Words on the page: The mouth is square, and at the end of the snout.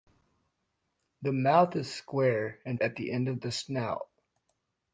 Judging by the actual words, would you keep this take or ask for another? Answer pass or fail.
pass